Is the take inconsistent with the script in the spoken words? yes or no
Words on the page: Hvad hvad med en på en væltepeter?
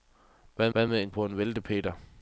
no